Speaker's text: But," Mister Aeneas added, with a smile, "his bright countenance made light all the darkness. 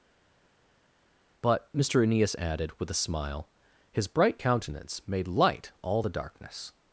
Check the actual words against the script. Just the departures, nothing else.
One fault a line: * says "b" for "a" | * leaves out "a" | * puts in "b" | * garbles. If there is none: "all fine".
all fine